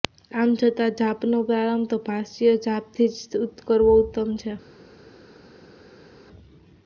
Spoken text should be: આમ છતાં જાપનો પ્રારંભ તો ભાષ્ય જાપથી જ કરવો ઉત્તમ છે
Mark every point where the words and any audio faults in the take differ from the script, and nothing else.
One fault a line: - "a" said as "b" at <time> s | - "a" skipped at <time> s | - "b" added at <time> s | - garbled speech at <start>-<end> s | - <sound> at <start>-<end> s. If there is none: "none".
none